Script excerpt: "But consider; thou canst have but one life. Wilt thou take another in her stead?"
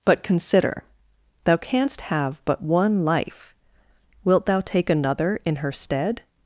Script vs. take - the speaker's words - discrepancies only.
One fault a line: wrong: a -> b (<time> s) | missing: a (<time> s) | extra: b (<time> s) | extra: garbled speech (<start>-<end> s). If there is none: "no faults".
no faults